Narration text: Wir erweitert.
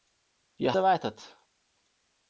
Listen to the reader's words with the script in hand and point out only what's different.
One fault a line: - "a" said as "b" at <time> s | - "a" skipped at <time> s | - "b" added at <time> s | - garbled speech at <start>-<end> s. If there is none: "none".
none